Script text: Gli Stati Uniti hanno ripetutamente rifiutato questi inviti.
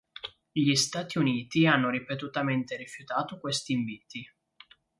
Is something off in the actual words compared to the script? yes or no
no